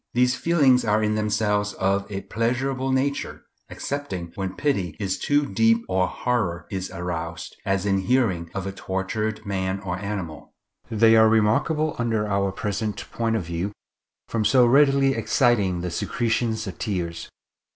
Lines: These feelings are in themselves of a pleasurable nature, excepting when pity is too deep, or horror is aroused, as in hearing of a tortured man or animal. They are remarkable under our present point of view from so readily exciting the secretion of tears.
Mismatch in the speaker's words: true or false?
false